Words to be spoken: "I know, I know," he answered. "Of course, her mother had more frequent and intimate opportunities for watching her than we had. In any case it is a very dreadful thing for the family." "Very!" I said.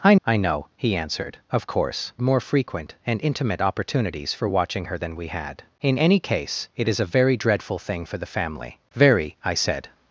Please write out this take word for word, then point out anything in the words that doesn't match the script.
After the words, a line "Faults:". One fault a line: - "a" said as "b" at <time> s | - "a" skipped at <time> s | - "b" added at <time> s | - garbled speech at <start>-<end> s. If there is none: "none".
"I I know," he answered. "Of course, more frequent and intimate opportunities for watching her than we had. In any case it is a very dreadful thing for the family." "Very!" I said.
Faults:
- "know" skipped at 0.1 s
- "her mother had" skipped at 2.1 s